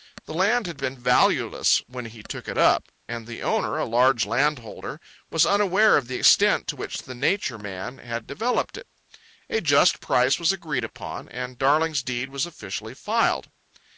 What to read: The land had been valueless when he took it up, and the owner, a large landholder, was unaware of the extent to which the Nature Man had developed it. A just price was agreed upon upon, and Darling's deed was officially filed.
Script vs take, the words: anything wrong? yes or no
yes